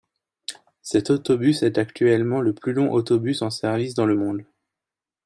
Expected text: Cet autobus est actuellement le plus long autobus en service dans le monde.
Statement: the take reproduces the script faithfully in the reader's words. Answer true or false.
true